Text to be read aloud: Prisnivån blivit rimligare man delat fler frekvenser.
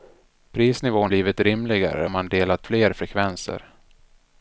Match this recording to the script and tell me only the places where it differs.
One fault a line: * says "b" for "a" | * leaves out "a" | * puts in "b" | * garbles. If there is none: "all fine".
all fine